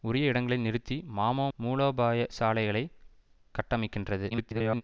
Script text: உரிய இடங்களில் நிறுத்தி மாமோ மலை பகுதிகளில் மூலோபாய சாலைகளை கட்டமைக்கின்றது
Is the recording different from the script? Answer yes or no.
yes